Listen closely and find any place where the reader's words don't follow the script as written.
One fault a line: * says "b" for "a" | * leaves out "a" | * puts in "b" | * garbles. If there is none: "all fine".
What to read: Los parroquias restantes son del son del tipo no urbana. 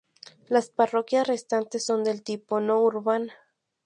* says "Las" for "Los"
* leaves out "son del"